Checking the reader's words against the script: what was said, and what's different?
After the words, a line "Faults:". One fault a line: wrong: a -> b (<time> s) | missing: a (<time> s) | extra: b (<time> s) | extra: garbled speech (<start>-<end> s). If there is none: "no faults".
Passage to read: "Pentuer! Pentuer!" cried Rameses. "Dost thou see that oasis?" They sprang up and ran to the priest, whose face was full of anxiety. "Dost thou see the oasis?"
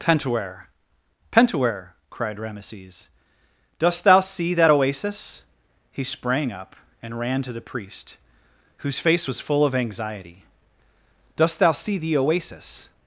"Pentuer! Pentuer!" cried Rameses. "Dost thou see that oasis?" He sprang up and ran to the priest, whose face was full of anxiety. "Dost thou see the oasis?"
Faults:
wrong: They -> He (5.9 s)